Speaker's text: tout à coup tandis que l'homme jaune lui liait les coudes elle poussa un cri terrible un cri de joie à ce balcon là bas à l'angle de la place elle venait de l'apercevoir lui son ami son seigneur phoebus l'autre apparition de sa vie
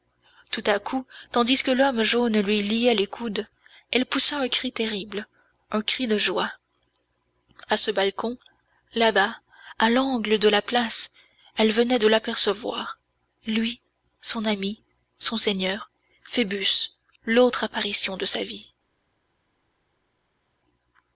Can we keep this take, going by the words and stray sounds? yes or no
yes